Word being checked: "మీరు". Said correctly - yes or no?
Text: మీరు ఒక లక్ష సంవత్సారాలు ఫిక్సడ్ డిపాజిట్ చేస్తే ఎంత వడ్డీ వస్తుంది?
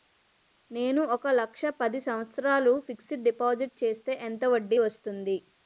no